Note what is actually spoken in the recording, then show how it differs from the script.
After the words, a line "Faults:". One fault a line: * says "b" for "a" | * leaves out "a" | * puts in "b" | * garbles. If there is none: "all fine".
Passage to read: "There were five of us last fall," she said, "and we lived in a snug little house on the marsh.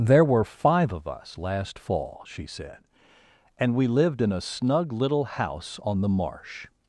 "There were five of us last fall," she said, "and we lived in a snug little house on the marsh.
Faults:
all fine